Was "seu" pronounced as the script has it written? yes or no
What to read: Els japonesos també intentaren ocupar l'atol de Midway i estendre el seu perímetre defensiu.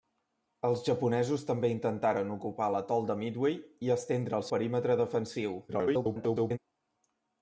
no